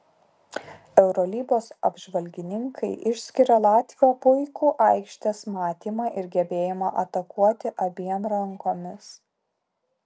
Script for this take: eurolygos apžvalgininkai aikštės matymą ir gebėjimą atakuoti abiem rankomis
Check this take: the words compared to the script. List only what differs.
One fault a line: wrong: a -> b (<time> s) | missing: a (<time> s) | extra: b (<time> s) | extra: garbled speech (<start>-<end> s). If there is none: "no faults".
extra: išskiria latvio puikų (3.1 s)